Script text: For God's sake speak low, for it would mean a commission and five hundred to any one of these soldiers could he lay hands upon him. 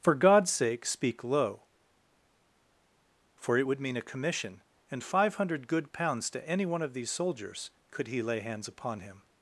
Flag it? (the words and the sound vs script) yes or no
yes